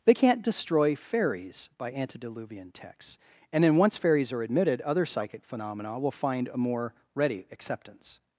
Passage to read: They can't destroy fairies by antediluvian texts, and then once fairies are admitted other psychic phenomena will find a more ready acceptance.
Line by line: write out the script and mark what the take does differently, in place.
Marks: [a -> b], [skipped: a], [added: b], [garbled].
They can't destroy fairies by antediluvian texts, and then once fairies are admitted other psychic phenomena will find a more ready acceptance.